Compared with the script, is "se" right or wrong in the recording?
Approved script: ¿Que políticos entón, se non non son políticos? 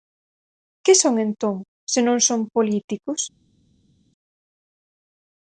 right